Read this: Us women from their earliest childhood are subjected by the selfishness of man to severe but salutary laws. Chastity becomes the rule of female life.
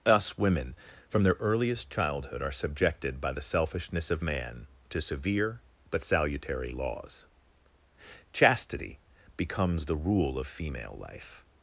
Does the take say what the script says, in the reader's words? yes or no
yes